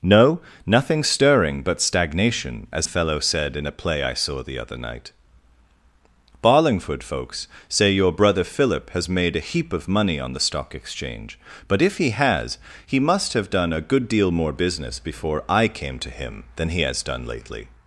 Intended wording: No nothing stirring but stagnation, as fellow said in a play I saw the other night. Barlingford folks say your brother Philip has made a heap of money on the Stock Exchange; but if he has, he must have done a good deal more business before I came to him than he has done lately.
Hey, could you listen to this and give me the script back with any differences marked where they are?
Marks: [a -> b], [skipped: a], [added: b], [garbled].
No nothing stirring but stagnation, as fellow said in a play I saw the other night. Barlingford folks say your brother Philip has made a heap of money on the Stock Exchange; but if he has, he must have done a good deal more business before I came to him than he has done lately.